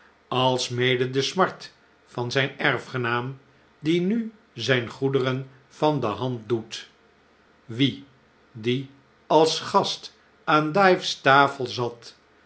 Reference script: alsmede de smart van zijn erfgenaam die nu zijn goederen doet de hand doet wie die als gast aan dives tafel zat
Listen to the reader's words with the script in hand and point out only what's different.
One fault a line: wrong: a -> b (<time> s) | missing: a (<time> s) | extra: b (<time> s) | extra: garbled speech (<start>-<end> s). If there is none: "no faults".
wrong: doet -> van (5.7 s)